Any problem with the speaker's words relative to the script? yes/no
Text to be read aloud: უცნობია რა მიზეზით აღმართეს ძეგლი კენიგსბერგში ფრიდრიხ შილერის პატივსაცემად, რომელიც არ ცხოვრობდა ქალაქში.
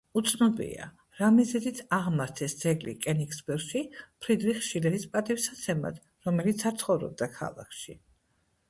no